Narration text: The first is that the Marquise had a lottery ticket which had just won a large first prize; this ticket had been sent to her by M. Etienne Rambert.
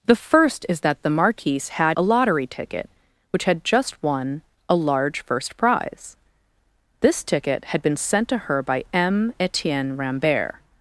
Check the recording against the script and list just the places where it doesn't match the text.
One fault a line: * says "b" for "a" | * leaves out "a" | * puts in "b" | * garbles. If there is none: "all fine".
all fine